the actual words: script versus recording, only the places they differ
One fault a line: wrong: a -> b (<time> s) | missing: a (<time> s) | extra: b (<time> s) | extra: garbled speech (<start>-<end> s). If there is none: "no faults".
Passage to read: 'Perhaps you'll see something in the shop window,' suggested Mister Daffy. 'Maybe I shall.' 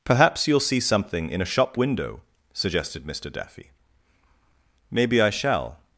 wrong: the -> a (1.4 s)